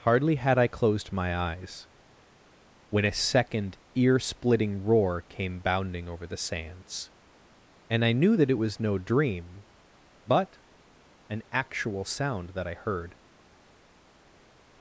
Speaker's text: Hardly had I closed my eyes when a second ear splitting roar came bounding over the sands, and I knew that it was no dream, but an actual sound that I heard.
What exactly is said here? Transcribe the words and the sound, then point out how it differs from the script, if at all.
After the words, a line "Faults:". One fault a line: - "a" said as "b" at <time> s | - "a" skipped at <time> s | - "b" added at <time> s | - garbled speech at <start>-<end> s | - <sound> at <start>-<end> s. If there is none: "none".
Hardly had I closed my eyes when a second ear splitting roar came bounding over the sands, and I knew that it was no dream, but an actual sound that I heard.
Faults:
none